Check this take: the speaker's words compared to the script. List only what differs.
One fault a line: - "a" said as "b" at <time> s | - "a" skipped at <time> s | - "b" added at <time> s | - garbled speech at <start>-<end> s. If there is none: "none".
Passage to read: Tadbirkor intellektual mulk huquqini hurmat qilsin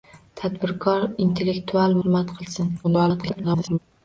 - "mulk huquqini" skipped at 2.0 s
- garbled speech at 2.8-3.8 s